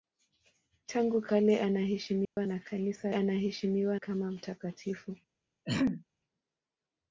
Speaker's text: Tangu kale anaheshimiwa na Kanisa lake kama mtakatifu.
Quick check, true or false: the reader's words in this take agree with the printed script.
false